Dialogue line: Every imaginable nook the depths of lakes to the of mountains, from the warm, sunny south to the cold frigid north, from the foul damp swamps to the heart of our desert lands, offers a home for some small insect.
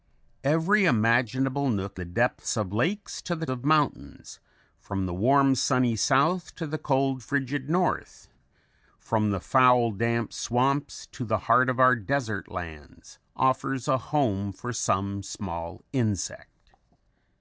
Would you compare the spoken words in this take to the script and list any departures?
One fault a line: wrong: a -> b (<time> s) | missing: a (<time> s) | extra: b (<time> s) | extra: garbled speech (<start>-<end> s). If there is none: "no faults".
no faults